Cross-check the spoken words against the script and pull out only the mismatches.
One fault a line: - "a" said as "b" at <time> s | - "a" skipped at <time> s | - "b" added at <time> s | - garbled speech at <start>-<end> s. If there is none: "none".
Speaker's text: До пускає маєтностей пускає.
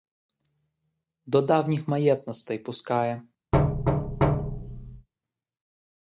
- "пускає" said as "давніх" at 1.4 s